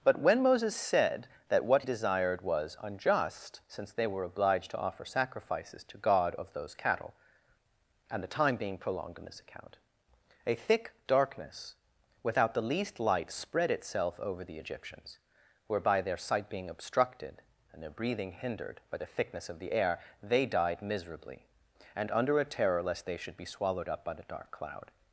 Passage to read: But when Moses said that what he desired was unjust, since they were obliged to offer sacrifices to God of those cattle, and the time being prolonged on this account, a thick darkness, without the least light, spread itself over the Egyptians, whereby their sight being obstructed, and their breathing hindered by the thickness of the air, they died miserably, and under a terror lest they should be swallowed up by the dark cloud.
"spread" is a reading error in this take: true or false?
false